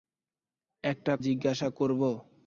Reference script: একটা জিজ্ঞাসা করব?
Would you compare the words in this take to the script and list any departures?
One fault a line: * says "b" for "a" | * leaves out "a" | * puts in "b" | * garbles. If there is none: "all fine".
all fine